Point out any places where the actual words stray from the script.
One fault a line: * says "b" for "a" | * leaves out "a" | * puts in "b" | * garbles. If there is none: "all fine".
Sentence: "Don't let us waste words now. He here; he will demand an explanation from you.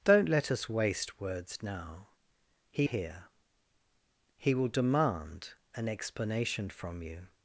all fine